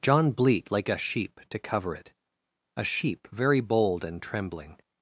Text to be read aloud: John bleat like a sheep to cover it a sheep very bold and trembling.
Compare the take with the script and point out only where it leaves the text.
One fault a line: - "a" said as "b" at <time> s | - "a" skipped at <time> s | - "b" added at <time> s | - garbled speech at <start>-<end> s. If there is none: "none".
none